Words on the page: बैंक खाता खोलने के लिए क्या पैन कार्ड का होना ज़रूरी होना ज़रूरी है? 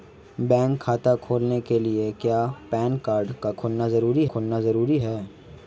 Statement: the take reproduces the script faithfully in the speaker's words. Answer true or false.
true